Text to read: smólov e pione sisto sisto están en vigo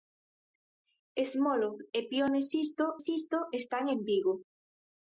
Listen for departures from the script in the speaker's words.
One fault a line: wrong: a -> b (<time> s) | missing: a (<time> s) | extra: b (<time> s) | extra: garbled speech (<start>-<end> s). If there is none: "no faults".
no faults